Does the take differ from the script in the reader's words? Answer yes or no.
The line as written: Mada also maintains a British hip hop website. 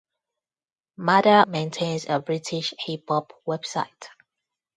yes